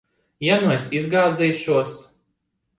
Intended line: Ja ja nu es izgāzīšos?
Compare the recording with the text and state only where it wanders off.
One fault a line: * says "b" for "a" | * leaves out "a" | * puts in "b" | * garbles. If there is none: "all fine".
* leaves out "ja"